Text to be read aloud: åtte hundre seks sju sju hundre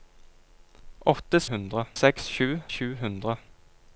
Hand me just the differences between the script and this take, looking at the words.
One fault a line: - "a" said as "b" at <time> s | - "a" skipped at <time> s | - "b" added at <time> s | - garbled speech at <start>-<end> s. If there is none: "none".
none